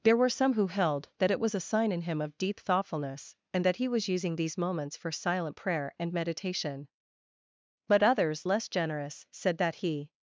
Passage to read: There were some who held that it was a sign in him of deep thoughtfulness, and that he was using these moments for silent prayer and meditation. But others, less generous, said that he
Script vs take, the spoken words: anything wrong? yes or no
no